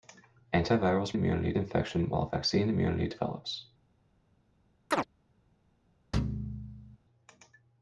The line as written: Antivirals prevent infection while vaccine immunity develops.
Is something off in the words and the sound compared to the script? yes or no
yes